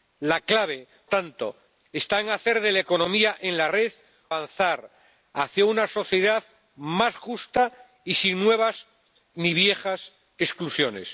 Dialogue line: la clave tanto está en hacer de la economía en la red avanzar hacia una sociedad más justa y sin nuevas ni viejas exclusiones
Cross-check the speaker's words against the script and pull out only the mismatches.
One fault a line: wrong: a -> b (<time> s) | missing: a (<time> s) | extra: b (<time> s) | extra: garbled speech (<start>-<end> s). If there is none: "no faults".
no faults